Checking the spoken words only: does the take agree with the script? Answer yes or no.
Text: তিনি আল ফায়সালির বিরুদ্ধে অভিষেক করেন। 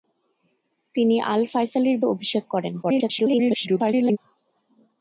no